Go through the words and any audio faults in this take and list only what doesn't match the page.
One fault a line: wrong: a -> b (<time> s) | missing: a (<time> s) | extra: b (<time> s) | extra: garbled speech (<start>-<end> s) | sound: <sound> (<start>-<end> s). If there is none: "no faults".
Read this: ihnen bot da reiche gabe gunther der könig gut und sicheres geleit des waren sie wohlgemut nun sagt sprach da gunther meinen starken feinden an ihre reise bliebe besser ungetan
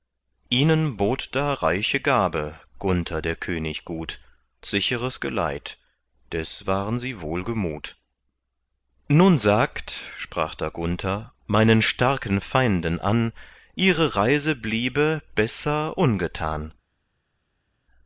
missing: und (4.2 s)